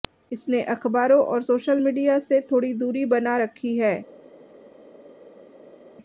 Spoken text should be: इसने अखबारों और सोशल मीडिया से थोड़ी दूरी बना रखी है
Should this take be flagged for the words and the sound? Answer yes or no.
no